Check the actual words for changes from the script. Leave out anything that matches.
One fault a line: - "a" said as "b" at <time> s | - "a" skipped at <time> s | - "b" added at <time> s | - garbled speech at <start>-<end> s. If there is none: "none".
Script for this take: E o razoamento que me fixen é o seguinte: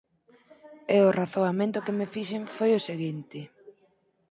- "é" said as "foi" at 2.5 s